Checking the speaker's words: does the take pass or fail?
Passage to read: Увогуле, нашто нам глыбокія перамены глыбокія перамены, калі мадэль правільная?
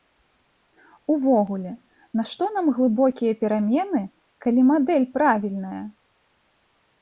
fail